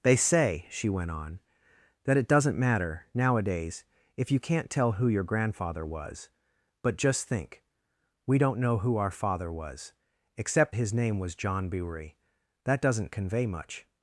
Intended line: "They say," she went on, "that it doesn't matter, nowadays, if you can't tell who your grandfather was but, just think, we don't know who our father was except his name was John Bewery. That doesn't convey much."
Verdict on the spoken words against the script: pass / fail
pass